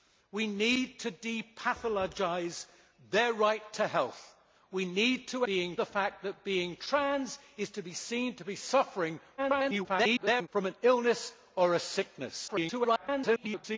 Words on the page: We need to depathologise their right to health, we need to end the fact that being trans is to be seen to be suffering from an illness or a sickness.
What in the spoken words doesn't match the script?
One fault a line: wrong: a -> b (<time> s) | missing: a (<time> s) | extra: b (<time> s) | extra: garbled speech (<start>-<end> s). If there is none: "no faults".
wrong: end -> being (5.4 s)
extra: garbled speech (9.4-10.5 s)
extra: garbled speech (12.5-13.8 s)